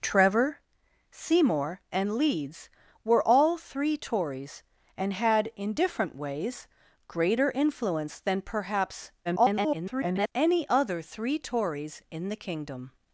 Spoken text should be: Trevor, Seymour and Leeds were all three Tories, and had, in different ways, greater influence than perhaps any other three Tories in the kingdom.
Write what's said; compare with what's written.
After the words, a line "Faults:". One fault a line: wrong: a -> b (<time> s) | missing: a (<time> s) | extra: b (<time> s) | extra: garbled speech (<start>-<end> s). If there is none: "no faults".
Trevor, Seymour and Leeds were all three Tories, and had, in different ways, greater influence than perhaps [garbled] any other three Tories in the kingdom.
Faults:
extra: garbled speech (9.2-10.3 s)